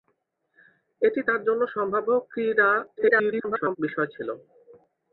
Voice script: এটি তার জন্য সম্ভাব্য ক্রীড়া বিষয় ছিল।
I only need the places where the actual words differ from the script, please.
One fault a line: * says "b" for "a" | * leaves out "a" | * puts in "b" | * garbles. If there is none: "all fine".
* garbles